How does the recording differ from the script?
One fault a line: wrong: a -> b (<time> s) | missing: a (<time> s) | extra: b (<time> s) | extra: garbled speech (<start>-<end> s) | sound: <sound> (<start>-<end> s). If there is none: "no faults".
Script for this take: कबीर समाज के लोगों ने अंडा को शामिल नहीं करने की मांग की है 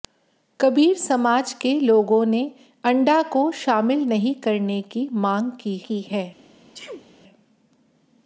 extra: की (5.8 s)
sound: sneeze (6.7-7.1 s)